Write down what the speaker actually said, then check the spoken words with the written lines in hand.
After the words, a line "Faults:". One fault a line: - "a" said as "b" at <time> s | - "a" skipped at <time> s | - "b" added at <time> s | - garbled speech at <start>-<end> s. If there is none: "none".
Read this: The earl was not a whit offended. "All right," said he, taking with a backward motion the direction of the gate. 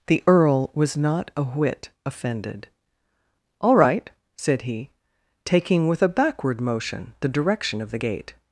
The earl was not a whit offended. "All right," said he, taking with a backward motion the direction of the gate.
Faults:
none